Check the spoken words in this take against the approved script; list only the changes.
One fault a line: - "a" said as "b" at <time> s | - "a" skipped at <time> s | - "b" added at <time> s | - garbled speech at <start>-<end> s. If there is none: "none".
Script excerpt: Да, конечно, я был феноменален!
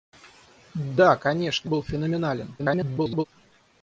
- "я" skipped at 1.7 s
- garbled speech at 2.6-3.2 s